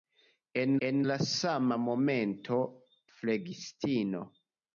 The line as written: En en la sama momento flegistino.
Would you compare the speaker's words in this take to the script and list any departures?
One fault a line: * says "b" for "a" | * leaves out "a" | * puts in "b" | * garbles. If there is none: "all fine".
all fine